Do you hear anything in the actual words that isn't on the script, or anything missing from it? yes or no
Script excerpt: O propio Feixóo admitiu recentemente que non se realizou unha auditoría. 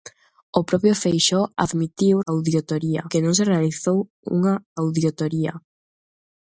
yes